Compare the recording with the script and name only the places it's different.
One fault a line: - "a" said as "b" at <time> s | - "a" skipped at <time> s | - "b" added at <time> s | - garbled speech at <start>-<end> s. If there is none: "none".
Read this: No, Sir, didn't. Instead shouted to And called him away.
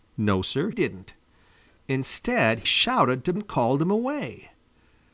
none